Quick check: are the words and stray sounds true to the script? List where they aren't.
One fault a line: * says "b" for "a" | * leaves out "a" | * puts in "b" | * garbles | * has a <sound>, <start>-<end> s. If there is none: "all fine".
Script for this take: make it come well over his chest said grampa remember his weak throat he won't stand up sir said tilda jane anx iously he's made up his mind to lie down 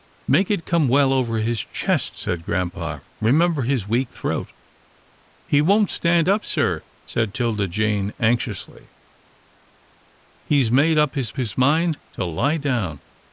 * puts in "his"